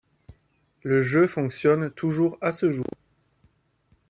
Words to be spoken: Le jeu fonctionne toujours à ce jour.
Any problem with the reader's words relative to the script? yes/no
no